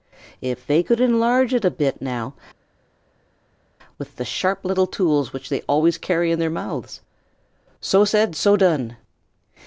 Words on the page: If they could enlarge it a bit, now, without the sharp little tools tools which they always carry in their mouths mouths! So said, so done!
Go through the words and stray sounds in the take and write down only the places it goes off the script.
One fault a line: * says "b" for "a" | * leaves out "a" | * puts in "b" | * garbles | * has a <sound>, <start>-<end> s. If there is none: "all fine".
* says "with" for "without"
* leaves out "tools"
* leaves out "mouths"